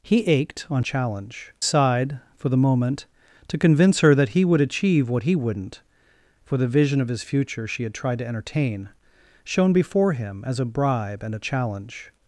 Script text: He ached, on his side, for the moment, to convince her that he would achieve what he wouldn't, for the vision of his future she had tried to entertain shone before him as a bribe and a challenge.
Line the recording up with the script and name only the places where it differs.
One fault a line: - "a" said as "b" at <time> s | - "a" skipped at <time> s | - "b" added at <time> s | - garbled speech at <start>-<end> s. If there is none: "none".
- "his" said as "challenge" at 0.8 s